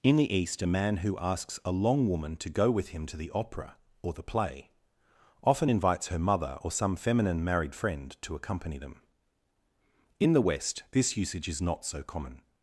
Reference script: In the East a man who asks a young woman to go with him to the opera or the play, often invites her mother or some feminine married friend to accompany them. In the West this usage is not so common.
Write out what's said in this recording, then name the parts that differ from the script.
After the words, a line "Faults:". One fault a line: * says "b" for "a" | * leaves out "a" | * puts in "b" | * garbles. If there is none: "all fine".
In the East a man who asks a long woman to go with him to the opera or the play, often invites her mother or some feminine married friend to accompany them. In the West this usage is not so common.
Faults:
* says "long" for "young"